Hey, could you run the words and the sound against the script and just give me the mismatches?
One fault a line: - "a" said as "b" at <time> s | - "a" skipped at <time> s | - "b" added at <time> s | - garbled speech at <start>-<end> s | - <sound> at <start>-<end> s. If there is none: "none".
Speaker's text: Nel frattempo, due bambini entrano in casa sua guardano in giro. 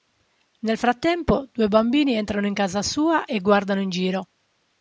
- "e" added at 3.2 s